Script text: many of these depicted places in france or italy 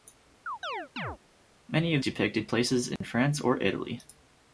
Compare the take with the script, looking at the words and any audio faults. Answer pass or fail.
fail